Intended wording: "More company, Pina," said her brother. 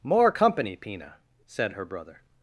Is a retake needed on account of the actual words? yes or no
no